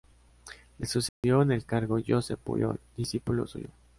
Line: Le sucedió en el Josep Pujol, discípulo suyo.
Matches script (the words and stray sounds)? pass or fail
fail